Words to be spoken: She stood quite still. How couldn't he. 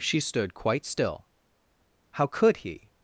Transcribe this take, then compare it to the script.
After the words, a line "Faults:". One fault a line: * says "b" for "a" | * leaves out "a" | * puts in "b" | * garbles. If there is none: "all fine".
She stood quite still. How could he.
Faults:
* says "could" for "couldn't"